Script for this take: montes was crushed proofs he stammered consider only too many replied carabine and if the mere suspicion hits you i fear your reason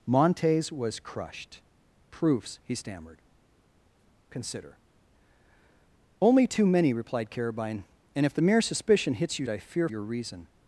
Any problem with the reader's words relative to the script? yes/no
no